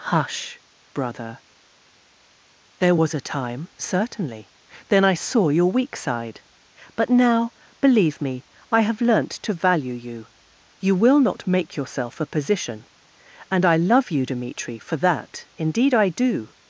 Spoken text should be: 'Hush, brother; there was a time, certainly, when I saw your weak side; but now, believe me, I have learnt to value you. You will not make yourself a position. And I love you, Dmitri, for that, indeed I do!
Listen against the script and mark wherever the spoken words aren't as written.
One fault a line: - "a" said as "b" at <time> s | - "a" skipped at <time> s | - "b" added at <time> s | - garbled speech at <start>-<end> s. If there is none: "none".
- "when" said as "then" at 4.9 s